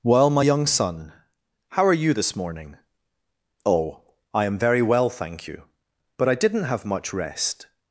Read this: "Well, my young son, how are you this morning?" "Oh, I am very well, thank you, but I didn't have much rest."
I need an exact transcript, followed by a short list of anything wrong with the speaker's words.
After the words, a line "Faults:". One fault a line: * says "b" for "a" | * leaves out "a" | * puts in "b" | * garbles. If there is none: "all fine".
"Well, my young son, how are you this morning?" "Oh, I am very well, thank you, but I didn't have much rest."
Faults:
all fine